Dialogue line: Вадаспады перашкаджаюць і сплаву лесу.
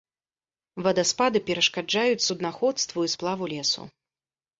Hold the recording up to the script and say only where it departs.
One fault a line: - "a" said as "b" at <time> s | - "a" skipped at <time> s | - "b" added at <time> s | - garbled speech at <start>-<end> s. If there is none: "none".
- "суднаходству" added at 2.3 s